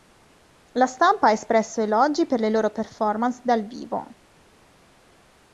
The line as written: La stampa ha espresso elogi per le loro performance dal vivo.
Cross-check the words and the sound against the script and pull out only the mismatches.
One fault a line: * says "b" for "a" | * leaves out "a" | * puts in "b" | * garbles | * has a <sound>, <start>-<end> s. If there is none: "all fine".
all fine